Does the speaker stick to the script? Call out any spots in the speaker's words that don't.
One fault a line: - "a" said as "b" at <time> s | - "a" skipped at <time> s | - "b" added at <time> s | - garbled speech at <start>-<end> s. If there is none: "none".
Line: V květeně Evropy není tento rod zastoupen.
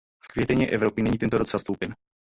none